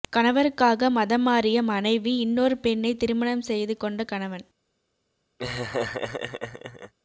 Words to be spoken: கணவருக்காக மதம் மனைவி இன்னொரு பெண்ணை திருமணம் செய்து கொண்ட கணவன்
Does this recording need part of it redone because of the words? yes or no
yes